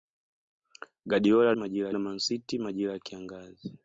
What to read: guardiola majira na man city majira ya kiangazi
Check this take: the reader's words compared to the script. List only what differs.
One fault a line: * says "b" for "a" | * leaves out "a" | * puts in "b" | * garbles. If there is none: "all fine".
all fine